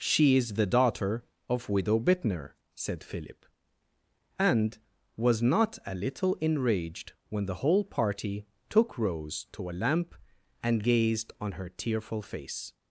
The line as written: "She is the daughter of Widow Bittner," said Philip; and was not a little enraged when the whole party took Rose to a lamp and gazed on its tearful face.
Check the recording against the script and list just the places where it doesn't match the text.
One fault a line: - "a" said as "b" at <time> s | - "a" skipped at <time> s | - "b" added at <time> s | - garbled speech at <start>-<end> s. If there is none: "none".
- "its" said as "her" at 11.5 s